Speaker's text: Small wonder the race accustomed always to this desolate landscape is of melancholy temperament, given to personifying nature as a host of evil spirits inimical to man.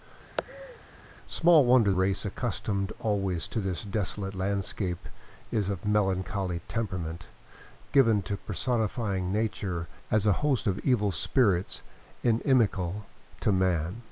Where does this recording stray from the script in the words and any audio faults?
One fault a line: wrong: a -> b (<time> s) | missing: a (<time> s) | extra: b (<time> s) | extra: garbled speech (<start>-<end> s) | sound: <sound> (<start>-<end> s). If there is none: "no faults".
sound: laugh (0.4-0.8 s)
missing: the (1.9 s)